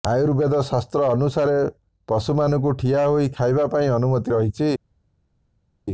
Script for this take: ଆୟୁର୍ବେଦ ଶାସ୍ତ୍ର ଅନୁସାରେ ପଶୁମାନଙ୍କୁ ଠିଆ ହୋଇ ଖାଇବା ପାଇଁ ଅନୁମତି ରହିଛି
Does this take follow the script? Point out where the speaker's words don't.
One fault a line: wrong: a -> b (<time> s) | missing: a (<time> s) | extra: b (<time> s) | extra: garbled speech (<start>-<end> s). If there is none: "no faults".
no faults